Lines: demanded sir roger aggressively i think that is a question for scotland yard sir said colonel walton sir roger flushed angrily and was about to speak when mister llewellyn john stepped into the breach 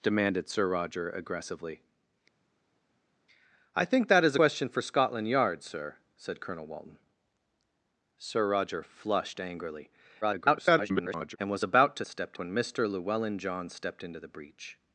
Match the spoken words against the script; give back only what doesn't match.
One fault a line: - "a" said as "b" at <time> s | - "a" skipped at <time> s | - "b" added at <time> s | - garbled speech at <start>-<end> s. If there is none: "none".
- "a" skipped at 4.4 s
- garbled speech at 10.2-11.4 s
- "speak" said as "stepped" at 12.0 s